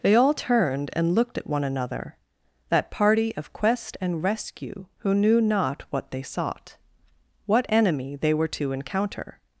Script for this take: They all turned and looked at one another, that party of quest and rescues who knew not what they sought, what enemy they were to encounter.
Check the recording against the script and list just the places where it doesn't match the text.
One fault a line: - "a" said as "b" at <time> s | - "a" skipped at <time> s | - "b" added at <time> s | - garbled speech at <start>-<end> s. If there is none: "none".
- "rescues" said as "rescue" at 4.2 s